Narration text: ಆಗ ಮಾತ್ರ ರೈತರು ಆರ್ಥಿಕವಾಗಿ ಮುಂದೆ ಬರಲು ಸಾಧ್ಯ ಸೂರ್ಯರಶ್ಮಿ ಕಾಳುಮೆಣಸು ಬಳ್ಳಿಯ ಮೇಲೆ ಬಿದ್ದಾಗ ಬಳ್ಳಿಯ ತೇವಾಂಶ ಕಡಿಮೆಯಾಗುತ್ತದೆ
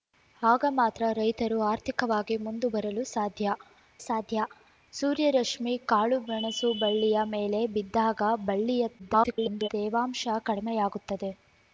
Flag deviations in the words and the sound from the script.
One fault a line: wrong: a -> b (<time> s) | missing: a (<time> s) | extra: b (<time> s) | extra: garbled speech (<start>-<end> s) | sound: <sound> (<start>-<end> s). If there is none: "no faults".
extra: ಸಾಧ್ಯ (4.0 s)
extra: garbled speech (9.0-9.7 s)